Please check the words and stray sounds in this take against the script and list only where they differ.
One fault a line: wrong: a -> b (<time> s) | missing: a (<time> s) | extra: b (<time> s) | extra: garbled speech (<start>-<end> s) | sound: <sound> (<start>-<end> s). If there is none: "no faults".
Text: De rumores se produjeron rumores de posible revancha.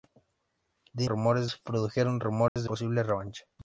sound: dropout (2.5-2.6 s)